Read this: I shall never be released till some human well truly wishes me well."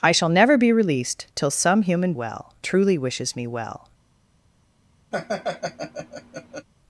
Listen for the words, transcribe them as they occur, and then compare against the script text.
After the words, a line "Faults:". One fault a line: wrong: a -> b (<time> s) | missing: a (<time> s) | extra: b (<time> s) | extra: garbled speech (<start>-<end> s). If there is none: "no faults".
I shall never be released till some human well truly wishes me well."
Faults:
no faults